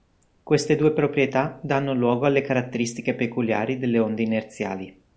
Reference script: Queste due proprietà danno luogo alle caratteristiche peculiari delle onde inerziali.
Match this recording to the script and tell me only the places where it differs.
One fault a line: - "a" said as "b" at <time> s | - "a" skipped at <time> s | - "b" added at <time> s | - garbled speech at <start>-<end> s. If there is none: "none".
none